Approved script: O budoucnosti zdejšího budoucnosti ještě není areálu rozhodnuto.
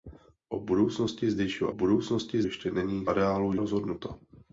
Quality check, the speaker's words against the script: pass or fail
pass